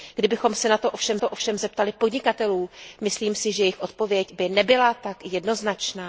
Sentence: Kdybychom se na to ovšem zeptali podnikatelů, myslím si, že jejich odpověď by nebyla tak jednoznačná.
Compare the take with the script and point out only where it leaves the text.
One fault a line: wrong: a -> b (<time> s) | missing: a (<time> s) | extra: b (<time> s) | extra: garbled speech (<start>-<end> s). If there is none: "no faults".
extra: to ovšem (1.2 s)